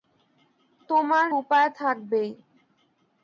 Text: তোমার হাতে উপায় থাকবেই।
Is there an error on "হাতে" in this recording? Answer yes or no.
yes